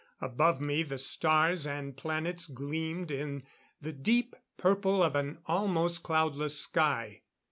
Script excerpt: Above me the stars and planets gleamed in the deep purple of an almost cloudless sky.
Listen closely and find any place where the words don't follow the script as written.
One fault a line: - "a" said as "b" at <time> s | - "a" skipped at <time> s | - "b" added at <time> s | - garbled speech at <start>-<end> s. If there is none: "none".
none